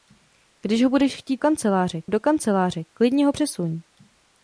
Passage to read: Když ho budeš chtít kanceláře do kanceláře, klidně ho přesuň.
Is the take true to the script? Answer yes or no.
yes